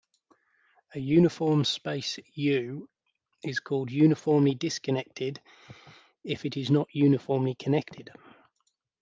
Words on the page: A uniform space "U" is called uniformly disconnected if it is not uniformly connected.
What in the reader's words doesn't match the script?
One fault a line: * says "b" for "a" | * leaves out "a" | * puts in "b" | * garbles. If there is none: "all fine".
all fine